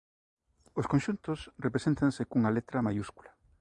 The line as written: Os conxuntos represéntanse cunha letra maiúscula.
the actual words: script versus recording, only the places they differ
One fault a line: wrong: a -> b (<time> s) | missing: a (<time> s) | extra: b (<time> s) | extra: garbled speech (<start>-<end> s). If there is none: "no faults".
no faults